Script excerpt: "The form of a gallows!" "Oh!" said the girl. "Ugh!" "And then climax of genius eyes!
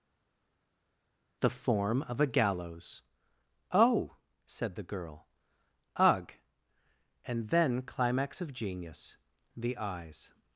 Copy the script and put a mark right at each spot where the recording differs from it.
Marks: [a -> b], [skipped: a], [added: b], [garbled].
"The form of a gallows!" "Oh!" said the girl. "Ugh!" "And then climax of genius [added: the] eyes!